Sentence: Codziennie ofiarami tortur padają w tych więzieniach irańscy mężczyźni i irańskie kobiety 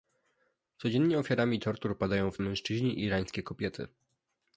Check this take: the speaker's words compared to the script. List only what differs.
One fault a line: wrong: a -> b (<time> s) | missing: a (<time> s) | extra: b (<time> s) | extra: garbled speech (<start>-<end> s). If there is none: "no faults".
missing: tych więzieniach irańscy (2.4 s)